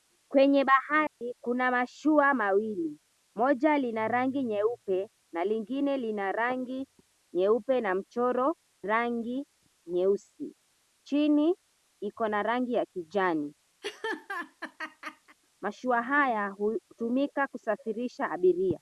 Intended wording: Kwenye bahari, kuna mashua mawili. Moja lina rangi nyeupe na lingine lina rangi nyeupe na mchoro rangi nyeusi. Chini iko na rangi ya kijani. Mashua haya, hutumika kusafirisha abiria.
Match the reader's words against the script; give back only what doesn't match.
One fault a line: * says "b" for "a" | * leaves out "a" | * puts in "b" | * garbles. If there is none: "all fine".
all fine